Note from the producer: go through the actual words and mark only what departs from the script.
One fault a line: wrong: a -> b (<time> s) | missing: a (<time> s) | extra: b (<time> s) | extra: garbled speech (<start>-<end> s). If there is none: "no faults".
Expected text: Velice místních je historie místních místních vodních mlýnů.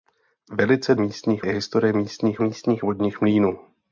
no faults